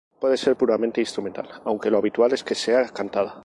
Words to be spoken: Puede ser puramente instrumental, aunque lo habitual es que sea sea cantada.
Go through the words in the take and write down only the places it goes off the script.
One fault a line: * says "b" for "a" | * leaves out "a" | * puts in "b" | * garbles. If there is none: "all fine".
* leaves out "sea"